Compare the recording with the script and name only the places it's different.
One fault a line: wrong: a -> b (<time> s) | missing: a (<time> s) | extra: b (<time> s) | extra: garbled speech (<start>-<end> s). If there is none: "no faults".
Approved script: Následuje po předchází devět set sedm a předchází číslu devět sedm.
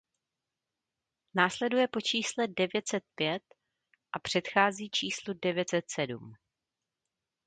wrong: předchází -> čísle (2.0 s)
wrong: sedm -> pět (3.1 s)
extra: set (5.7 s)